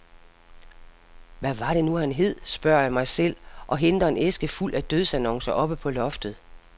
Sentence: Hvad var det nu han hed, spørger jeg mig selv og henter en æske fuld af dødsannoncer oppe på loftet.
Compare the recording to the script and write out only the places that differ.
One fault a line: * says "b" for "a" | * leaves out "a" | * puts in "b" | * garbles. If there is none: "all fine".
all fine